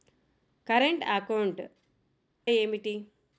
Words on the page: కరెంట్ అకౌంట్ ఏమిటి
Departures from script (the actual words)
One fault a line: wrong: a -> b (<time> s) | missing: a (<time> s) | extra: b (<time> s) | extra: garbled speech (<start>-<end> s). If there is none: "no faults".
no faults